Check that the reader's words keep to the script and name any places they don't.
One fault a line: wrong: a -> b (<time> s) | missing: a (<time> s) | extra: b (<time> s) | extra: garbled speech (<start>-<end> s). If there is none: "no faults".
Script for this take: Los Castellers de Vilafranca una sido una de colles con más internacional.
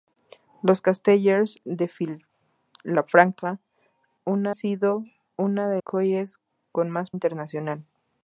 no faults